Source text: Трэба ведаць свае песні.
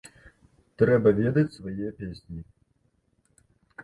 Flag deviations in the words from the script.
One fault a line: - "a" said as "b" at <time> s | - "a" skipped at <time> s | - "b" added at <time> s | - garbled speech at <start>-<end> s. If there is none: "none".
none